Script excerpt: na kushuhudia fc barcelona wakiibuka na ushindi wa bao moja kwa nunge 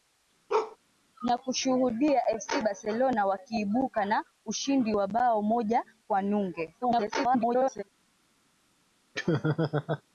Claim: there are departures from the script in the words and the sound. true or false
true